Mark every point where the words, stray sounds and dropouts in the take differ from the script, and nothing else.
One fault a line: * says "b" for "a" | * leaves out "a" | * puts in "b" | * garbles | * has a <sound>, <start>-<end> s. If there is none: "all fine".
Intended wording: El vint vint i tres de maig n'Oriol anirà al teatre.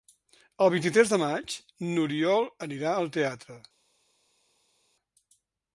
* leaves out "vint"